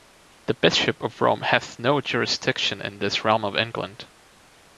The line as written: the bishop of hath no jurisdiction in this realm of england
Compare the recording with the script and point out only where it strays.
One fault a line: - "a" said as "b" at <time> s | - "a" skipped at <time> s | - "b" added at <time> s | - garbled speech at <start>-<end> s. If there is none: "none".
- "rome" added at 1.2 s